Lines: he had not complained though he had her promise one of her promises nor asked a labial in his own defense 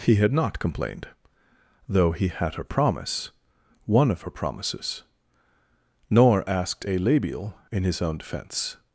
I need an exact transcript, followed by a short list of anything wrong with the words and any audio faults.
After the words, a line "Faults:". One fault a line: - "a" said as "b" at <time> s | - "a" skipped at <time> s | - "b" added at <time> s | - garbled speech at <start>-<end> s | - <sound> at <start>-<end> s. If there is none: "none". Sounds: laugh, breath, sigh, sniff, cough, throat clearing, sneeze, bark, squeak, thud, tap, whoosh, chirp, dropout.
he had not complained though he had her promise one of her promises nor asked a labial in his own defense
Faults:
none